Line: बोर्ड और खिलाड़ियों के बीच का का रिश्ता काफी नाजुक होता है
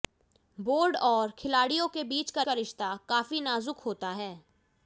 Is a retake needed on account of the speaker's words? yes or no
no